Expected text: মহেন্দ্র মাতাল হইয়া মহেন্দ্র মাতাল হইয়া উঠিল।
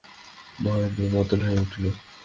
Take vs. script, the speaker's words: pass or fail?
fail